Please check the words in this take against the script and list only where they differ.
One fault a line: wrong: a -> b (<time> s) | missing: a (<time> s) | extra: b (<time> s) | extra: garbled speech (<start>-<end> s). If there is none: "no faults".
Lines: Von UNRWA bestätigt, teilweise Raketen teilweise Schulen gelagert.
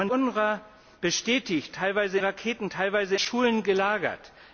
no faults